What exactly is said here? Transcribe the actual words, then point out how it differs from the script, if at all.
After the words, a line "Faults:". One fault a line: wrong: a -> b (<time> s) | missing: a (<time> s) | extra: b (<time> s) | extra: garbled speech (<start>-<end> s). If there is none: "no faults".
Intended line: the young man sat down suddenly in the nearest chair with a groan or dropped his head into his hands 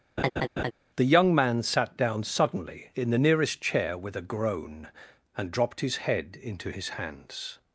the young man sat down suddenly in the nearest chair with a groan and dropped his head into his hands
Faults:
wrong: or -> and (5.4 s)